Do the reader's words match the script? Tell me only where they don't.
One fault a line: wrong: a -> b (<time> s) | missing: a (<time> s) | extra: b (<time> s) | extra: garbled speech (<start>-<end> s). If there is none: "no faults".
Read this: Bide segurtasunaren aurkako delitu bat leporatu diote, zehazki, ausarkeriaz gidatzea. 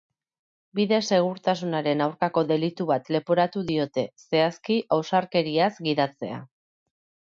no faults